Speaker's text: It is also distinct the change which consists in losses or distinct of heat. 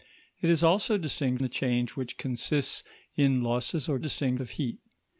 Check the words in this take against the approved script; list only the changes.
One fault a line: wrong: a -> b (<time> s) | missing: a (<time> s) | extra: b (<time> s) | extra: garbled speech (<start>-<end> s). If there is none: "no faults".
no faults